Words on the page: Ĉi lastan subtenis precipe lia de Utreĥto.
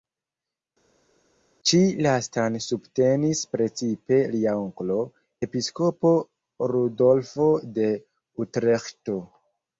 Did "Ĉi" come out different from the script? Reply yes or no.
no